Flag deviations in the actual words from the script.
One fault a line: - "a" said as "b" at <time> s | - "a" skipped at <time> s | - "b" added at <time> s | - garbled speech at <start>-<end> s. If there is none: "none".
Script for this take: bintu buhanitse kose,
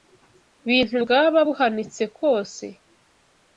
- "bwaba" added at 1.0 s